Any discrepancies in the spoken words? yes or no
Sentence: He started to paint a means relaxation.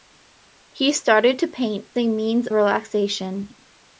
no